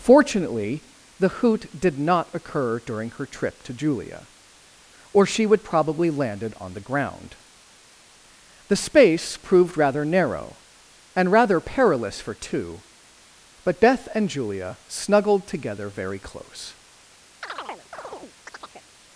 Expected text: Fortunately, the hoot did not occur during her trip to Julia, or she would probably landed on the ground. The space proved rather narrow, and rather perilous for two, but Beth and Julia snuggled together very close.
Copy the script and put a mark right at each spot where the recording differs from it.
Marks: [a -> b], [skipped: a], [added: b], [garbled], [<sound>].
Fortunately, the hoot did not occur during her trip to Julia, or she would probably landed on the ground. The space proved rather narrow, and rather perilous for two, but Beth and Julia snuggled together very close. [chirp]